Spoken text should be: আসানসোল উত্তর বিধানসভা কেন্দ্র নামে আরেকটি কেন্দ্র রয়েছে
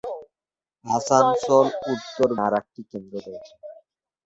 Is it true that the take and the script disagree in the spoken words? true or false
true